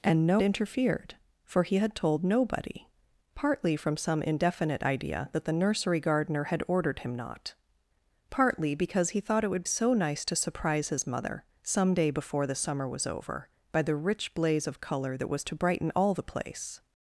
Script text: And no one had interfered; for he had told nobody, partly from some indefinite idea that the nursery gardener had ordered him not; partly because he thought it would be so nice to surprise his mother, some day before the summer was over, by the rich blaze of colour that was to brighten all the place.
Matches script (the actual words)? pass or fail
fail